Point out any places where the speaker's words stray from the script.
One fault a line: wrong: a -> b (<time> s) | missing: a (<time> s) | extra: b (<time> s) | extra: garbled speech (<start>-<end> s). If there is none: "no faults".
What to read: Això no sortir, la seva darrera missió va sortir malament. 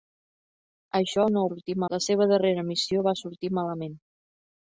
no faults